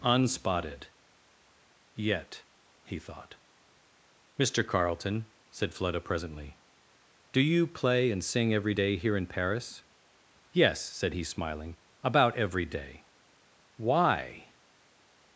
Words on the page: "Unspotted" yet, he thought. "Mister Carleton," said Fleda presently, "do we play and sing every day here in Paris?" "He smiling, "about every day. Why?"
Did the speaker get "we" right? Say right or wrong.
wrong